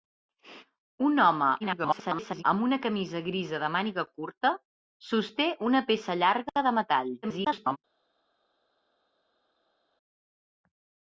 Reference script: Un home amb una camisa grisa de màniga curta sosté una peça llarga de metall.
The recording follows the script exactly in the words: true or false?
false